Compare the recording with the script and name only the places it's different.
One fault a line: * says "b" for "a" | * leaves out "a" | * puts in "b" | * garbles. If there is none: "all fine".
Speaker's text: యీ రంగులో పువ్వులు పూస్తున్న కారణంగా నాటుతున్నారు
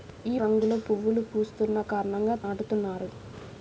all fine